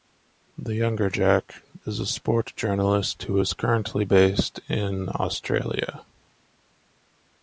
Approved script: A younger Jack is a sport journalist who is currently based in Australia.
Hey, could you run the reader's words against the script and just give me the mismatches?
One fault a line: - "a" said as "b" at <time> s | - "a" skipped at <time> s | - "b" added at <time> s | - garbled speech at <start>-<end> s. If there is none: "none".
- "A" said as "The" at 0.6 s